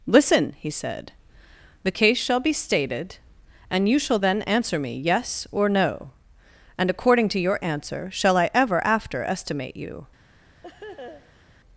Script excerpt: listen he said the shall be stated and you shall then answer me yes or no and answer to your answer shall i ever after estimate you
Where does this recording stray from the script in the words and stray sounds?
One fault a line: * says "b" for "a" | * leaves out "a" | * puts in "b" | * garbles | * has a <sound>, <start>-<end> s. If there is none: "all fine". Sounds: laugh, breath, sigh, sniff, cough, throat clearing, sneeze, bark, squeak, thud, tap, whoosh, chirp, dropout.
* puts in "case"
* says "according" for "answer"
* has a laugh, 10.6-11.4 s